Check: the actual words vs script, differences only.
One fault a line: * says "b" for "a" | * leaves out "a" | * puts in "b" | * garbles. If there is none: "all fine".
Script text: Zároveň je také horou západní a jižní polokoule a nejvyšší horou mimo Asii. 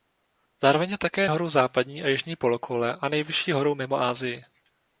all fine